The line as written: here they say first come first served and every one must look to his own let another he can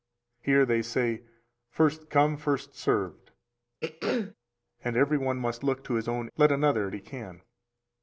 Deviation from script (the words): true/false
false